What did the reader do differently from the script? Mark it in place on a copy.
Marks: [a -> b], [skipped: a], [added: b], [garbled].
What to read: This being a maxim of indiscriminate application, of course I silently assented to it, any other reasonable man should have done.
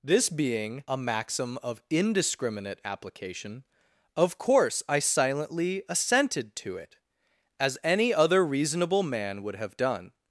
This being a maxim of indiscriminate application, of course I silently assented to it, [added: as] any other reasonable man [should -> would] have done.